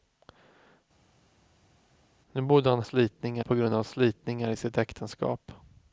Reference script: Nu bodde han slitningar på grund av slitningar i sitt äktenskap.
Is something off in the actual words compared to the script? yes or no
no